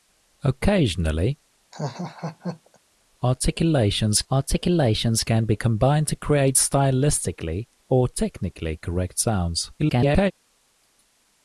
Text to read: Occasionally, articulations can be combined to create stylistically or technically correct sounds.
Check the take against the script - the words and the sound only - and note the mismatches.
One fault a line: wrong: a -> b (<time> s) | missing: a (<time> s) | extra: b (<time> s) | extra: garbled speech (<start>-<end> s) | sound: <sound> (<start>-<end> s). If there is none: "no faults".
sound: laugh (1.7-2.8 s)
extra: articulations (4.3 s)
extra: garbled speech (9.8-10.3 s)